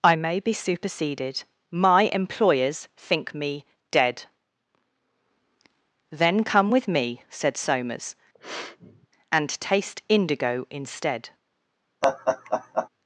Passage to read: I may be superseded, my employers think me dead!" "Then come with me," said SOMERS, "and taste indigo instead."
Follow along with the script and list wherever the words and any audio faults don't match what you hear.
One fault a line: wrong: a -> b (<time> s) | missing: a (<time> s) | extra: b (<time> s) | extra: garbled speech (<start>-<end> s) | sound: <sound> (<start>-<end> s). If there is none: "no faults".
sound: sniff (8.3-9.1 s)
sound: laugh (12.0-12.9 s)